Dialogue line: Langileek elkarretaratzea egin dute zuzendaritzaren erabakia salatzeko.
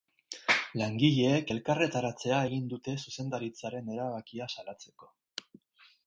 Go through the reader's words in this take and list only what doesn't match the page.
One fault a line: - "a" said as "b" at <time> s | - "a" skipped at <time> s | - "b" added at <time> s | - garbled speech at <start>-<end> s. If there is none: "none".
none